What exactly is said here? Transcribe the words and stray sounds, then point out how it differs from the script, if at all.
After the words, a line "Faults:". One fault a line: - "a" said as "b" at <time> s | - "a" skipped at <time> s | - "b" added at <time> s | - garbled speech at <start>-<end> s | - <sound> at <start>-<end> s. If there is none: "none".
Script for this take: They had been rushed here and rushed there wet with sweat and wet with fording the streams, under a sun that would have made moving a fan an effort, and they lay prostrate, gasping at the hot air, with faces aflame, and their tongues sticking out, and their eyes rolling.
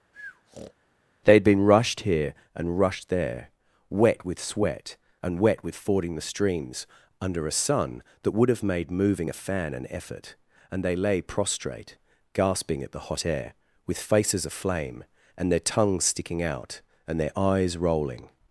They had been rushed here and rushed there wet with sweat and wet with fording the streams, under a sun that would have made moving a fan an effort, and they lay prostrate, gasping at the hot air, with faces aflame, and their tongues sticking out, and their eyes rolling.
Faults:
- breath at 0.1-0.7 s